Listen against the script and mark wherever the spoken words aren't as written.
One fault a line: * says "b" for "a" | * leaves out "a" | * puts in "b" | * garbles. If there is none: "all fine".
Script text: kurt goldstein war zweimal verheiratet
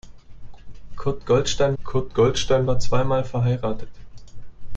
* puts in "kurt goldstein"